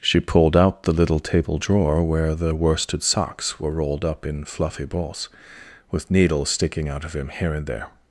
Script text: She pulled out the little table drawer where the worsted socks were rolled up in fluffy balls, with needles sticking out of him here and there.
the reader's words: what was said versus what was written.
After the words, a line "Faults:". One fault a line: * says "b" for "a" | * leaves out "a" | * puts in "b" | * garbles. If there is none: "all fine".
She pulled out the little table drawer where the worsted socks were rolled up in fluffy balls, with needles sticking out of him here and there.
Faults:
all fine